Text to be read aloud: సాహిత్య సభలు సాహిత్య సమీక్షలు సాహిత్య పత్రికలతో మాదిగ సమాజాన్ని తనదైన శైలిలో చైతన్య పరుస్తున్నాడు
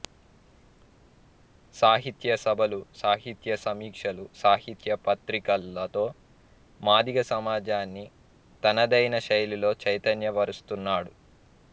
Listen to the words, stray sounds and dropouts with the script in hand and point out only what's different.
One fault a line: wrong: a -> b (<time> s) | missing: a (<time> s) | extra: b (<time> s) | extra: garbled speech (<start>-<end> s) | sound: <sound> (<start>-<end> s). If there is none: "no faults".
no faults